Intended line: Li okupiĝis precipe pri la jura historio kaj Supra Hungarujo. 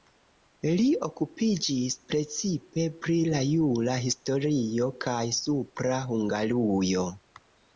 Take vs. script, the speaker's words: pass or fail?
pass